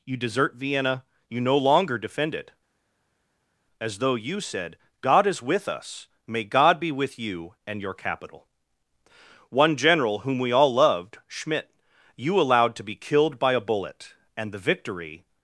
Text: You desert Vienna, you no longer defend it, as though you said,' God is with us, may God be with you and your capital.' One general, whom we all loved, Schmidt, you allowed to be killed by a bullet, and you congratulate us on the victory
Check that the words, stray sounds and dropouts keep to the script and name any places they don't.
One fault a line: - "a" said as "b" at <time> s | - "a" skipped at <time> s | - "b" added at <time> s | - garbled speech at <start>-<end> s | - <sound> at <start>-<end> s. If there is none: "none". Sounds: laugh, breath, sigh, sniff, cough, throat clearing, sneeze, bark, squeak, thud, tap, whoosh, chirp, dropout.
- "you congratulate us on" skipped at 14.5 s